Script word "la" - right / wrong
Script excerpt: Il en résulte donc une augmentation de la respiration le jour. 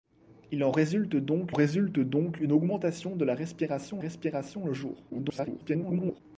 right